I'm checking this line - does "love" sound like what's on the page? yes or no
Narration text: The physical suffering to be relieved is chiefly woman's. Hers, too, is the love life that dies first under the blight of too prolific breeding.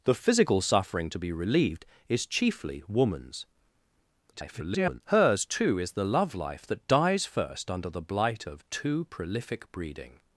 yes